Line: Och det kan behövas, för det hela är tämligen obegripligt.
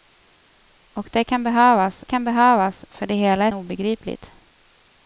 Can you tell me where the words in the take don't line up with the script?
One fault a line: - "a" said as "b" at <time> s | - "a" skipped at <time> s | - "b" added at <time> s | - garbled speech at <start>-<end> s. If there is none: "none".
- "kan behövas" added at 2.0 s
- "tämligen" skipped at 3.5 s